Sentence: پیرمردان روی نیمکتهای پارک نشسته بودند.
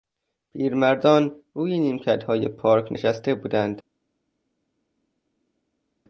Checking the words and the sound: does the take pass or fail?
pass